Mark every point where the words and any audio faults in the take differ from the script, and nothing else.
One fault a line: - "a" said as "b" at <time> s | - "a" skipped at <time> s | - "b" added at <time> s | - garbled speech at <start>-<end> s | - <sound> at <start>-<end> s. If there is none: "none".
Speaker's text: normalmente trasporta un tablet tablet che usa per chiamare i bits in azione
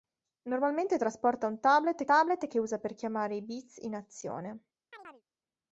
- chirp at 4.9-5.2 s